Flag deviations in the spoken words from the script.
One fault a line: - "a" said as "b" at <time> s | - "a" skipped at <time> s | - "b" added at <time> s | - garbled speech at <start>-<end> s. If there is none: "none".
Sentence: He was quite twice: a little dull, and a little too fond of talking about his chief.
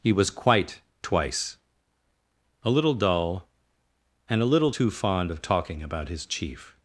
none